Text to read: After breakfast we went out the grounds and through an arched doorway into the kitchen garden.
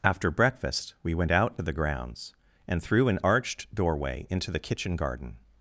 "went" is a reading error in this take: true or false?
false